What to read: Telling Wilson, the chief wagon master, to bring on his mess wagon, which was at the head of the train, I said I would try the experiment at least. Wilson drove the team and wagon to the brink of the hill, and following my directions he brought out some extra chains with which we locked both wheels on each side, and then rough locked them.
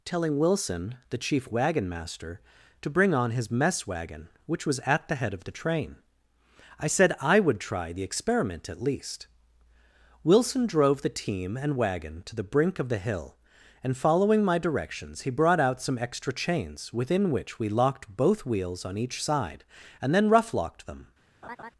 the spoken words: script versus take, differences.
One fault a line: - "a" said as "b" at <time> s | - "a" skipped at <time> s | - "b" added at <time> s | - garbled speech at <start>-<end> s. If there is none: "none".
- "with" said as "within" at 16.9 s